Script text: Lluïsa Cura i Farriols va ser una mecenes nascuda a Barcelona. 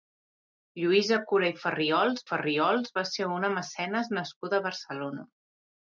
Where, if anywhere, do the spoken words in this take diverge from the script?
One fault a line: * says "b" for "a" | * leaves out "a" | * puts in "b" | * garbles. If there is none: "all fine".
* puts in "Farriols"